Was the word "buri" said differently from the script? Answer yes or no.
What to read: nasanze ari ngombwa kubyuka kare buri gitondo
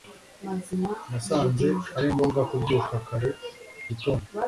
yes